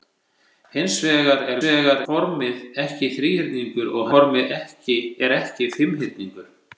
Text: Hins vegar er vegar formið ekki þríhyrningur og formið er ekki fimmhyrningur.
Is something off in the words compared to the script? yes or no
no